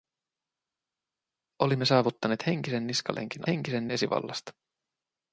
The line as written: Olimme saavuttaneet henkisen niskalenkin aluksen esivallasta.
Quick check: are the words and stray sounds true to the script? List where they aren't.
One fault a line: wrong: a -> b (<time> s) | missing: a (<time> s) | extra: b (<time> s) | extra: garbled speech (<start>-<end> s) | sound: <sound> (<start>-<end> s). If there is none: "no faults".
wrong: aluksen -> henkisen (3.5 s)